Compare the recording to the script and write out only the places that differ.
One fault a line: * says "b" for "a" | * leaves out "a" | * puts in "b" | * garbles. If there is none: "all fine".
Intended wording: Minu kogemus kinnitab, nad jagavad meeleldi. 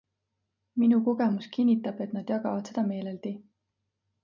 * puts in "et"
* puts in "seda"